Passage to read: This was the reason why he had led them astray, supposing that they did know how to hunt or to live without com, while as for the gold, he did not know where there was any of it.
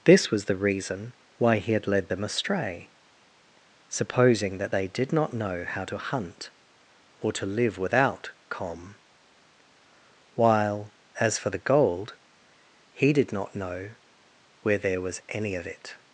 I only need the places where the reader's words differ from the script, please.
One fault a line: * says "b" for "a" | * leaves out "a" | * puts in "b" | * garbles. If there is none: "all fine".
* puts in "not"